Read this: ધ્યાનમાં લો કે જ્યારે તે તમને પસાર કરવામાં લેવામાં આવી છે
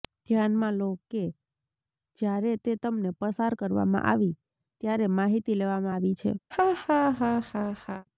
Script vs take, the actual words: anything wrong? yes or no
yes